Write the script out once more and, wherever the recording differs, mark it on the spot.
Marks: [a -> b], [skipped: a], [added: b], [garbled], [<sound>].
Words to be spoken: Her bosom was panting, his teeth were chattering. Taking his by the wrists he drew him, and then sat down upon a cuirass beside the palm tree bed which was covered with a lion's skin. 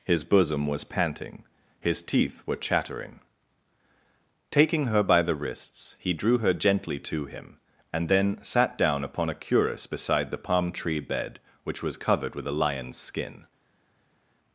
[Her -> His] bosom was panting, his teeth were chattering. Taking [his -> her] by the wrists he drew [added: her gently to] him, and then sat down upon a cuirass beside the palm tree bed which was covered with a lion's skin.